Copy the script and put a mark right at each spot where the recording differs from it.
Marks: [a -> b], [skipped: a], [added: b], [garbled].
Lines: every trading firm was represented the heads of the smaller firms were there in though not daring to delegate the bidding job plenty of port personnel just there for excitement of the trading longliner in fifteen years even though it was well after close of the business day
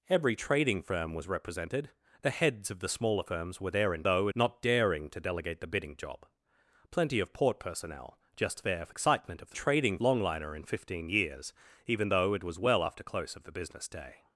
every trading firm was represented the heads of the smaller firms were there in though not daring to delegate the bidding job plenty of port personnel just there for excitement of the trading longliner in fifteen years even though it was well after close of the business day